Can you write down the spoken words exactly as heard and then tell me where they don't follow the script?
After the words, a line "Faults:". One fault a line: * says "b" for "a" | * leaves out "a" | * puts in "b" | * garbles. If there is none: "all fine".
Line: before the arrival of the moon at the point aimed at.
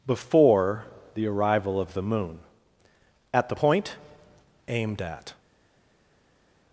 before the arrival of the moon at the point aimed at.
Faults:
all fine